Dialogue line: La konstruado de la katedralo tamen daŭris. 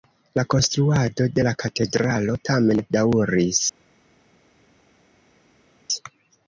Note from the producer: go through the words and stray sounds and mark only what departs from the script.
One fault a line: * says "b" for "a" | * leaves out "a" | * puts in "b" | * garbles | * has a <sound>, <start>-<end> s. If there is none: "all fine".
all fine